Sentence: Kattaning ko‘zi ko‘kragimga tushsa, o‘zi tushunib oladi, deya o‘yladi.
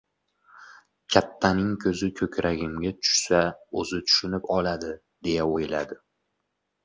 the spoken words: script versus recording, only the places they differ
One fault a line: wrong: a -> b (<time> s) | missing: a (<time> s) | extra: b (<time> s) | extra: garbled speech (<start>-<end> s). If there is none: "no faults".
no faults